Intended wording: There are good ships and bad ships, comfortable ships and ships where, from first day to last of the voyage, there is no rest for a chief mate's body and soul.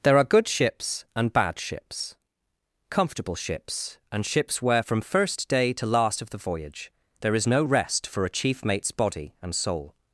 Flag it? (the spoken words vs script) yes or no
no